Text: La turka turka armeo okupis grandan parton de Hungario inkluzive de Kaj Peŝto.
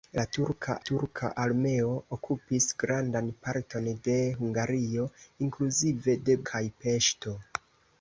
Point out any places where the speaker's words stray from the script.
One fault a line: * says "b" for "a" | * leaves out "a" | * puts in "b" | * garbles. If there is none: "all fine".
all fine